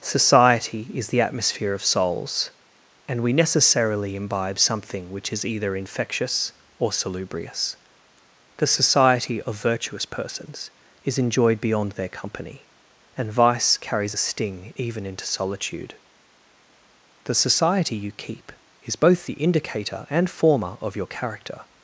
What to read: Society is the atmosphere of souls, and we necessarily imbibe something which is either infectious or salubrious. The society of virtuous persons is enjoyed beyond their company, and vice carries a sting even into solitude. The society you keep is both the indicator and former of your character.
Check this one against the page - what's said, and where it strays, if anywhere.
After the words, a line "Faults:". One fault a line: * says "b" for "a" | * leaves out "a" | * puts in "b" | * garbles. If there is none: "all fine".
Society is the atmosphere of souls, and we necessarily imbibe something which is either infectious or salubrious. The society of virtuous persons is enjoyed beyond their company, and vice carries a sting even into solitude. The society you keep is both the indicator and former of your character.
Faults:
all fine